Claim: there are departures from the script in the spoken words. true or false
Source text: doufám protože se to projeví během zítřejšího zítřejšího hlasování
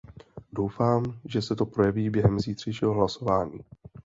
true